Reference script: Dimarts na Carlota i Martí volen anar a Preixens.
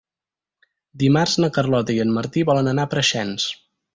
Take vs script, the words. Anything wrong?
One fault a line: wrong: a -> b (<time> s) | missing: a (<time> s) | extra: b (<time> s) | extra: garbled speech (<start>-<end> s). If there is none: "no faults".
extra: en (2.0 s)